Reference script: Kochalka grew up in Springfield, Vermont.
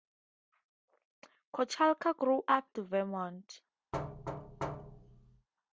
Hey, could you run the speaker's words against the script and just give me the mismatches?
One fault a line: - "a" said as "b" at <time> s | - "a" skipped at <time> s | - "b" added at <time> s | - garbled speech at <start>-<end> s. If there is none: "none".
- "in Springfield" skipped at 2.7 s